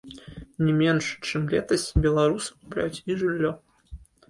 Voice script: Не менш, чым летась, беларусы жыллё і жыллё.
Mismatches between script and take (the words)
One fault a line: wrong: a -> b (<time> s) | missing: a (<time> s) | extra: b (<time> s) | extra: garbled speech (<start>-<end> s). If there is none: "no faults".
wrong: жыллё -> купляюць (2.6 s)